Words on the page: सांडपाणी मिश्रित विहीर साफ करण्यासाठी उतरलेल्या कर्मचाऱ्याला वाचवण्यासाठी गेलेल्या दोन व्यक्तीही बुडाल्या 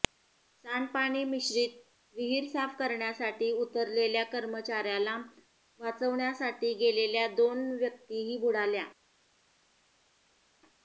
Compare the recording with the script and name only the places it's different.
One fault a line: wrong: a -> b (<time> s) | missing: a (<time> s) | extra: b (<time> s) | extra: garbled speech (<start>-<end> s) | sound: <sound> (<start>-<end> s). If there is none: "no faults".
no faults